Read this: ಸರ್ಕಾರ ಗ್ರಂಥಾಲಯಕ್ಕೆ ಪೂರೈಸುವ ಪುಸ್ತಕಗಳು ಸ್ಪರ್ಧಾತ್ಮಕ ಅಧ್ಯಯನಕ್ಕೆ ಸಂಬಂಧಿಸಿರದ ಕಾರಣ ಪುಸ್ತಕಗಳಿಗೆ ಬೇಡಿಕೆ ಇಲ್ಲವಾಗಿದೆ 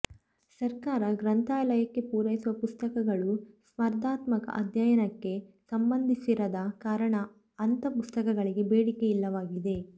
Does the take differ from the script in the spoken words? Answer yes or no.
yes